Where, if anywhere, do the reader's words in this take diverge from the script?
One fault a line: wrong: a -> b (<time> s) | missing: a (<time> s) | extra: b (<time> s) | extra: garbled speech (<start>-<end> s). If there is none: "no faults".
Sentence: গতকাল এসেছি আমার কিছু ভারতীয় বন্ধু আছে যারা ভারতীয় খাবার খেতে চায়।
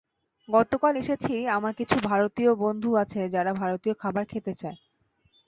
no faults